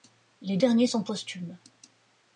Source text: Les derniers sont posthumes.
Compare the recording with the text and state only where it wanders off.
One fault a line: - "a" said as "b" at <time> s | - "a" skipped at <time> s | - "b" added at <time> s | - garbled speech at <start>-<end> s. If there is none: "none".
none